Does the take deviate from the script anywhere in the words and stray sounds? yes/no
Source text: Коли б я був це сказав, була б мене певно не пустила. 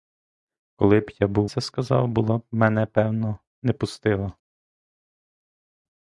no